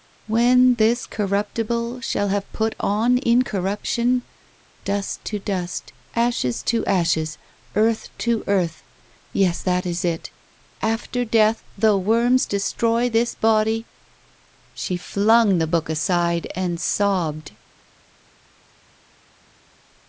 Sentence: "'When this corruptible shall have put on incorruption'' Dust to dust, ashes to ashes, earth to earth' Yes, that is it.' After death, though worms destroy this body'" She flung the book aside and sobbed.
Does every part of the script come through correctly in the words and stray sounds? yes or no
yes